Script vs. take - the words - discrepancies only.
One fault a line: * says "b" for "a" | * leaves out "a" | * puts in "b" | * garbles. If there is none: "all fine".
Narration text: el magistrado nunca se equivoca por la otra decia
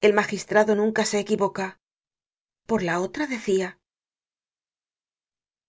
all fine